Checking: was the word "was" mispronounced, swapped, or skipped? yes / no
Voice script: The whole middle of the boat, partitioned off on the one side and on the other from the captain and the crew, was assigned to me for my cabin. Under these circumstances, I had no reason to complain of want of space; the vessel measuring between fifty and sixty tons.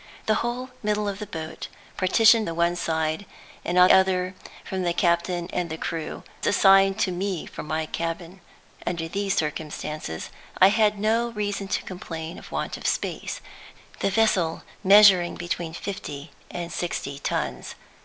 yes